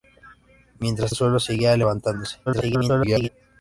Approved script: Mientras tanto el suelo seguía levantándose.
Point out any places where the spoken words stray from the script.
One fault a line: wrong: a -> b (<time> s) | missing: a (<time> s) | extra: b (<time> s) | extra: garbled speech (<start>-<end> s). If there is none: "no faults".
missing: tanto (1.1 s)
extra: garbled speech (2.5-3.3 s)